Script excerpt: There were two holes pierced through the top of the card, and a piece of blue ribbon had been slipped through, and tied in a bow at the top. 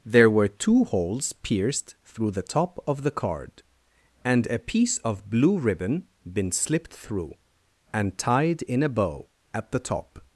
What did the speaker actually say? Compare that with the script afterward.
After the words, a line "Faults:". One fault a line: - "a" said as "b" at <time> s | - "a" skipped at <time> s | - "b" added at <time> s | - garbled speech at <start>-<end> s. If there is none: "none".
There were two holes pierced through the top of the card, and a piece of blue ribbon been slipped through, and tied in a bow at the top.
Faults:
- "had" skipped at 6.1 s